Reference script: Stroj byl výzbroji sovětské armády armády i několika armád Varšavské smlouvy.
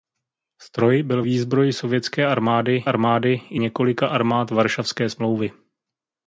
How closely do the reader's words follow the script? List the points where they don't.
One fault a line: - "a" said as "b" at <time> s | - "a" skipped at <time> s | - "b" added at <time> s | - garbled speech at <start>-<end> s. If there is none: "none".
none